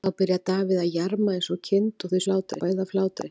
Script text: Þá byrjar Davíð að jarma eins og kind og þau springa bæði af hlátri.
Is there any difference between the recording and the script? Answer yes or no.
yes